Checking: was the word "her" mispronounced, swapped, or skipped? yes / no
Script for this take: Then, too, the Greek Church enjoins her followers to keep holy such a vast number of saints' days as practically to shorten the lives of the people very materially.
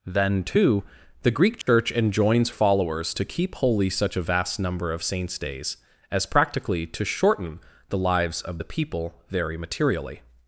yes